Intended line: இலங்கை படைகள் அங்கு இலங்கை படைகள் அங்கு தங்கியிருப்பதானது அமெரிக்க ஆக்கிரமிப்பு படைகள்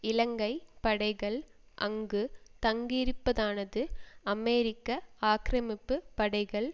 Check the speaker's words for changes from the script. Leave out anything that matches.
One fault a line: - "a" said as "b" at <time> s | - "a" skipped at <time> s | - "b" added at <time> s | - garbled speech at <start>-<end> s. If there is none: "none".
- "இலங்கை படைகள் அங்கு" skipped at 2.2 s